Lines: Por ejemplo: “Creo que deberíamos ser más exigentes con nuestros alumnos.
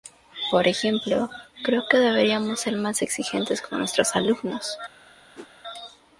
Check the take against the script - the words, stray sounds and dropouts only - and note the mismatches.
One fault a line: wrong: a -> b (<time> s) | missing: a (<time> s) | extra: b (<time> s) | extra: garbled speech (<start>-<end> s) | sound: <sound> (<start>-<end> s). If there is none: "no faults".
sound: whoosh (5.4-5.5 s)